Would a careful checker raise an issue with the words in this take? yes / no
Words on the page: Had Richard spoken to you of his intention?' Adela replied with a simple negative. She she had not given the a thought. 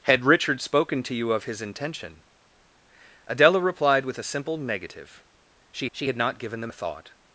no